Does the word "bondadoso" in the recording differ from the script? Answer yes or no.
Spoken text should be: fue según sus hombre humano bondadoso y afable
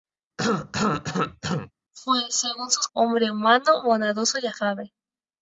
no